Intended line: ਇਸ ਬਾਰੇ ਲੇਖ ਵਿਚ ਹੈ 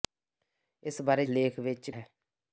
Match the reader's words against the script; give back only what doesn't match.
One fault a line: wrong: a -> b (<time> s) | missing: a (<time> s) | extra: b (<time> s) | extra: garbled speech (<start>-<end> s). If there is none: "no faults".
no faults